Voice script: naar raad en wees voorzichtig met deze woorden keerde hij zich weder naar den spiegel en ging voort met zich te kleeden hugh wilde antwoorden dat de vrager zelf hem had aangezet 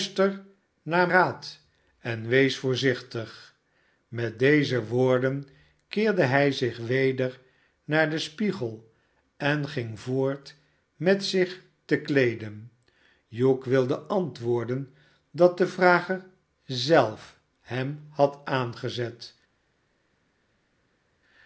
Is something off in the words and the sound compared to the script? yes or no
no